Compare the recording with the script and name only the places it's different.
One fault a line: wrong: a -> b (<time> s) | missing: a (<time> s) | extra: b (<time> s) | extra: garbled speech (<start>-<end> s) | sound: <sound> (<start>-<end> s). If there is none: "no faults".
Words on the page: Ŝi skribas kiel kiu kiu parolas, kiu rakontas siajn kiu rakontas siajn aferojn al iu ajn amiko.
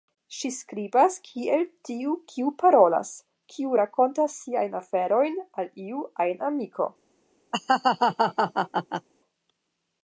wrong: kiu -> tiu (1.9 s)
missing: kiu rakontas siajn (4.8 s)
sound: laugh (7.5-9.1 s)